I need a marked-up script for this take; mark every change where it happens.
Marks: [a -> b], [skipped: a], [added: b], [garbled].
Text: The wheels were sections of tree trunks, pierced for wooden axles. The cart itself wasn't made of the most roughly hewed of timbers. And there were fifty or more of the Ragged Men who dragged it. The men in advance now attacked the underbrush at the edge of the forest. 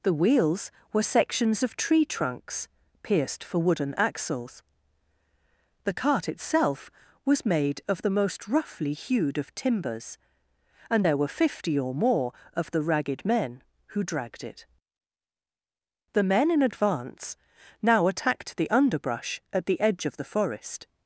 The wheels were sections of tree trunks, pierced for wooden axles. The cart itself [wasn't -> was] made of the most roughly hewed of timbers. And there were fifty or more of the Ragged Men who dragged it. The men in advance now attacked the underbrush at the edge of the forest.